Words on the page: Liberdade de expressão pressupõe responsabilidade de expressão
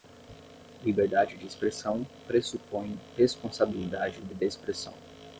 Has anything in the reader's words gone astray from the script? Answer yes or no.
yes